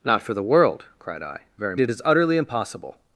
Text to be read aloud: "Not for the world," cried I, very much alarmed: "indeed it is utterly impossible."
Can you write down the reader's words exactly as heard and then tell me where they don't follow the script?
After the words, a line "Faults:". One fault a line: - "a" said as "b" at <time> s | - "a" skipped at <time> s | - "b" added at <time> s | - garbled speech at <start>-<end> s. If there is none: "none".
"Not for the world," cried I, very it is utterly impossible."
Faults:
- "much alarmed indeed" skipped at 1.8 s